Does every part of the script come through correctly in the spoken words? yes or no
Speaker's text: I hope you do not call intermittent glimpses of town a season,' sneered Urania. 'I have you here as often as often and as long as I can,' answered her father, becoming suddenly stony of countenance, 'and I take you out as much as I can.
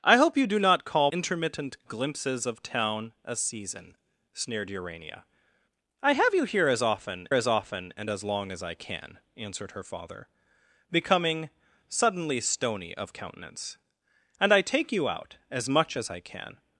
yes